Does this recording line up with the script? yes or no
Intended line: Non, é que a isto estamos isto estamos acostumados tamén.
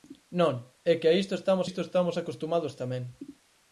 yes